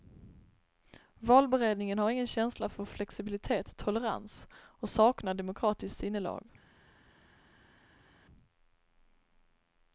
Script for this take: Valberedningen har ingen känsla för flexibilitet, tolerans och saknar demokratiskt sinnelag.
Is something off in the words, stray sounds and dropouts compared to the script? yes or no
no